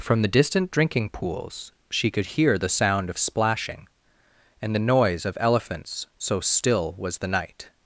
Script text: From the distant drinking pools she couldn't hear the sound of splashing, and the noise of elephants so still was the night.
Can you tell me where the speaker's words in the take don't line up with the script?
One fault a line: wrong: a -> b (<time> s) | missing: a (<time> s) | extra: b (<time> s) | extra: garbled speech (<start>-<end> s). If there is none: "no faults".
wrong: couldn't -> could (2.1 s)